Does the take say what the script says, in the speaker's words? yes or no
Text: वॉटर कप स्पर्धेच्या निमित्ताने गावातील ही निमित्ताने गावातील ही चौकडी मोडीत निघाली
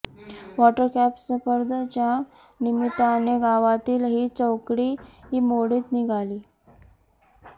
no